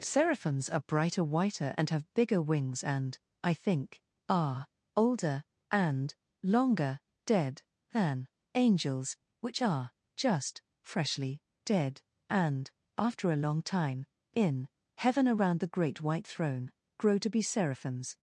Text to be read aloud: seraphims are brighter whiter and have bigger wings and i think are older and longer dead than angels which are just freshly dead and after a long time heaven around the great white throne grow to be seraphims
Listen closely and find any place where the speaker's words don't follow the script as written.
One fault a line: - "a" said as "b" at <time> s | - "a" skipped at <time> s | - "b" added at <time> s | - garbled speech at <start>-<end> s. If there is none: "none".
- "in" added at 14.3 s